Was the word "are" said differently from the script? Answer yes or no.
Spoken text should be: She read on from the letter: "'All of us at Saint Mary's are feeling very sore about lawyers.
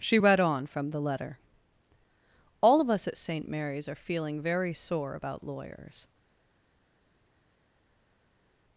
no